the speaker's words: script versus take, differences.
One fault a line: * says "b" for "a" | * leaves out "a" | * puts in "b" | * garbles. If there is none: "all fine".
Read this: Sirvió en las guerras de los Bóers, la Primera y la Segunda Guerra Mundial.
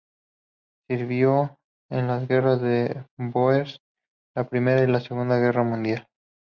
all fine